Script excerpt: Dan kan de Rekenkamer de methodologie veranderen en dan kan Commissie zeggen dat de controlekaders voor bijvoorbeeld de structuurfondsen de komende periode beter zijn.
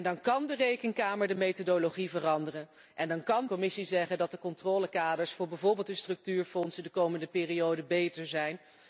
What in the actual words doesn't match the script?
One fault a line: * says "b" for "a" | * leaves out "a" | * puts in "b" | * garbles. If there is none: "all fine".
all fine